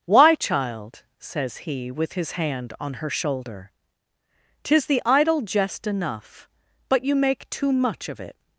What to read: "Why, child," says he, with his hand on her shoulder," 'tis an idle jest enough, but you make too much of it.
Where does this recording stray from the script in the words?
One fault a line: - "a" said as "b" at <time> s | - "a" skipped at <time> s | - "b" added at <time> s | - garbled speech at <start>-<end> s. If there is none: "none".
- "an" said as "the" at 4.9 s